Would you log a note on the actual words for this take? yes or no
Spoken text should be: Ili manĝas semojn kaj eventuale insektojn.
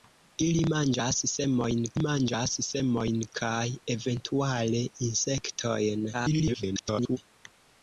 yes